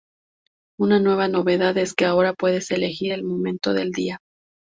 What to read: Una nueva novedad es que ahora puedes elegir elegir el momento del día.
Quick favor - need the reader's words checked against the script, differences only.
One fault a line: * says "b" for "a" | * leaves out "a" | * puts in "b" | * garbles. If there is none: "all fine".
* leaves out "elegir"